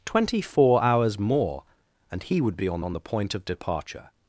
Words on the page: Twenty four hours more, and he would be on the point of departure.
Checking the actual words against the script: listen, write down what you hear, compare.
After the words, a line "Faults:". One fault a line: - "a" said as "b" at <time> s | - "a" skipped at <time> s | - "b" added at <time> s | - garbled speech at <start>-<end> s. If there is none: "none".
Twenty four hours more, and he would be on on the point of departure.
Faults:
- "on" added at 2.8 s